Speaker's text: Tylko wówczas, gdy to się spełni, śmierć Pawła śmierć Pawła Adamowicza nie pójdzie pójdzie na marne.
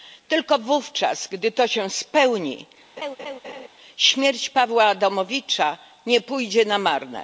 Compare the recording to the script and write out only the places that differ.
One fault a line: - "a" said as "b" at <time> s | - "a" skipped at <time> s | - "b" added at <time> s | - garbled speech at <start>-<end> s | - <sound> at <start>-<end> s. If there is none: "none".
- laugh at 3.0-3.7 s
- "śmierć Pawła" skipped at 4.8 s
- "pójdzie" skipped at 6.7 s